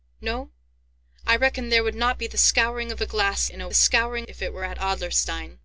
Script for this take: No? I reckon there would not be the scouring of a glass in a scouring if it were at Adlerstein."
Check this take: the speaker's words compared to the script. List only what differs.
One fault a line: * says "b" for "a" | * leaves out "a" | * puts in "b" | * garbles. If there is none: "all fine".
all fine